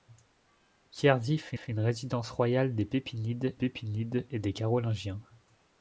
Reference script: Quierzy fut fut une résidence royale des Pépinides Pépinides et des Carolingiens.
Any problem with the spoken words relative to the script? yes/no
no